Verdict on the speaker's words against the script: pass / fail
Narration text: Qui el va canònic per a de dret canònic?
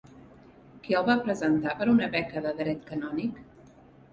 fail